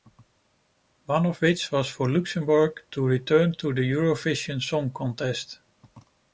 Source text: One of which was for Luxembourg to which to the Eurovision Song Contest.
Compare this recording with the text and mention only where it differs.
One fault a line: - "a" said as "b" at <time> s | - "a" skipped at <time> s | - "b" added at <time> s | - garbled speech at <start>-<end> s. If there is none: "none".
- "which" said as "return" at 3.0 s